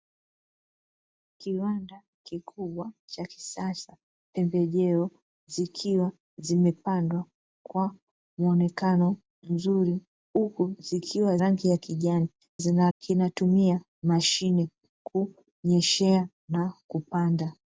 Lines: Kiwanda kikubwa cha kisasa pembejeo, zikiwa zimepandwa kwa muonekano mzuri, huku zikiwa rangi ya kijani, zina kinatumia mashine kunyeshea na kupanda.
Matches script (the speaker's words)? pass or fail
pass